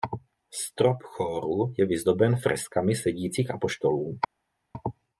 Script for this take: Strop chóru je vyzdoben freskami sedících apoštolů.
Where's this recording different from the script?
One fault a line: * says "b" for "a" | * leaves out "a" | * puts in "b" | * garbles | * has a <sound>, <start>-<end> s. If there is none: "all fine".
all fine